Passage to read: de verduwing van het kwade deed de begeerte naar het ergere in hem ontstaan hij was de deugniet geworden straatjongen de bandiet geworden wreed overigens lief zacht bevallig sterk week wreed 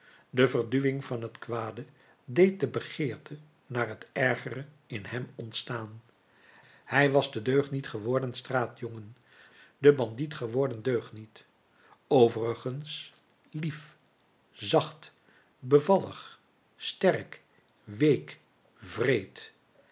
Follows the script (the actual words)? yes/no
no